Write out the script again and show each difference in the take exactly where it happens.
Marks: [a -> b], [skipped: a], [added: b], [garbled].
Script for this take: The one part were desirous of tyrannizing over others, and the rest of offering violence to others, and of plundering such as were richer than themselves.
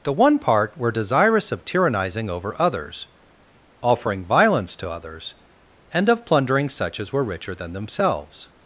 The one part were desirous of tyrannizing over others, [skipped: and the rest of] offering violence to others, and of plundering such as were richer than themselves.